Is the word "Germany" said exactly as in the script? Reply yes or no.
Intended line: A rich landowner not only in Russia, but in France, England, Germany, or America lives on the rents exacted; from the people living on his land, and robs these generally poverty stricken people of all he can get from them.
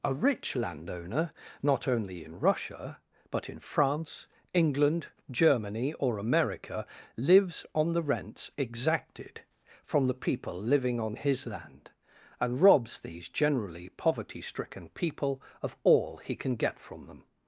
yes